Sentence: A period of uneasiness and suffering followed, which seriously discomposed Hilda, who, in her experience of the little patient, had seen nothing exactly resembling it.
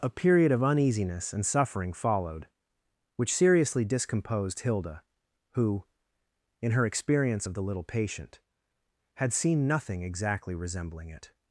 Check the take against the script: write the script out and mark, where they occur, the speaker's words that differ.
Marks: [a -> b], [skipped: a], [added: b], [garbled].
A period of uneasiness and suffering followed, which seriously discomposed Hilda, who, in her experience of the little patient, had seen nothing exactly resembling it.